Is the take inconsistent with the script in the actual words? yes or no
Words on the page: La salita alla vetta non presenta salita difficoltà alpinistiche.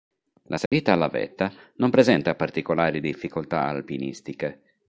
yes